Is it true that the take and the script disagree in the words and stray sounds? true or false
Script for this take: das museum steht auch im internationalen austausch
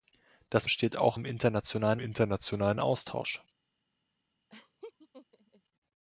true